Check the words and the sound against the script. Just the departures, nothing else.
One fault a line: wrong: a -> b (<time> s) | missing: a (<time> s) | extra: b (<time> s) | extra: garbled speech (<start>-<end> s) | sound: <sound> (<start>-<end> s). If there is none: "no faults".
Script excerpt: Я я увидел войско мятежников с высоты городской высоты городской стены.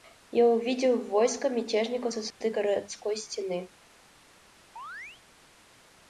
missing: я (0.5 s)
sound: dropout (2.3-2.4 s)
missing: высоты городской (3.2 s)
sound: chirp (4.8-5.2 s)